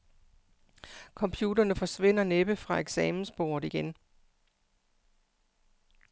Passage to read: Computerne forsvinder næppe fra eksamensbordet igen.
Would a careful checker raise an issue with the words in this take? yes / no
no